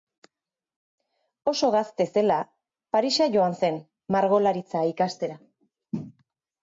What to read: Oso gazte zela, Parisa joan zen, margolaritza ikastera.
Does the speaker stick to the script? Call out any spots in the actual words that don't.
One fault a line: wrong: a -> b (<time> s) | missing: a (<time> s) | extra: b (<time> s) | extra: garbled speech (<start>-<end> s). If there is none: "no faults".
no faults